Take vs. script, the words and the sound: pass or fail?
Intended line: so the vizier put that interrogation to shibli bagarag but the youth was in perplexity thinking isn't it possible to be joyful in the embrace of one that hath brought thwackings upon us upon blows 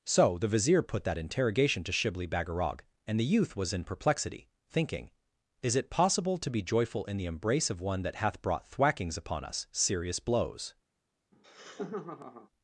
fail